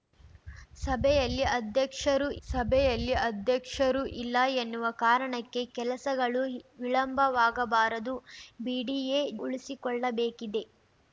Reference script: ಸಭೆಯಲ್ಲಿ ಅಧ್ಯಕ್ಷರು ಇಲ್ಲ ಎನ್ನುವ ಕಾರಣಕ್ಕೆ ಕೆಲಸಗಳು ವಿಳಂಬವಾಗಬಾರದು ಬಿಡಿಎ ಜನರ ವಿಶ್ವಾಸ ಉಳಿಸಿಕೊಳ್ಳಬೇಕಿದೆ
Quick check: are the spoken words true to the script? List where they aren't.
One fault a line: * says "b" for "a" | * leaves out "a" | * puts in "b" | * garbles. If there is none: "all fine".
* puts in "ಸಭೆಯಲ್ಲಿ ಅಧ್ಯಕ್ಷರು"
* leaves out "ಜನರ ವಿಶ್ವಾಸ"